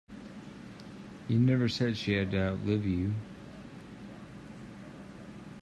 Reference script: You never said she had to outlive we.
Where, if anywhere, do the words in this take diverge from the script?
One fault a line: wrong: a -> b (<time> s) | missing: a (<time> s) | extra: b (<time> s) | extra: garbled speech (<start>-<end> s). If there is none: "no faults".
wrong: we -> you (2.9 s)